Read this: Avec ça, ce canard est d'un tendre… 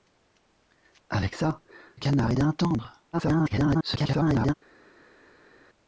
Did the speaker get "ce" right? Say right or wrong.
wrong